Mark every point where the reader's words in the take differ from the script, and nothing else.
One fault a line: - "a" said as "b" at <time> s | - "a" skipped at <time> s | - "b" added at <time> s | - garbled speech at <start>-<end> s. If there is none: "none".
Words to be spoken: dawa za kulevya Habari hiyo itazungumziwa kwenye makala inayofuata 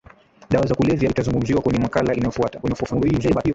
- "Habari hiyo" skipped at 1.1 s
- garbled speech at 2.6-3.5 s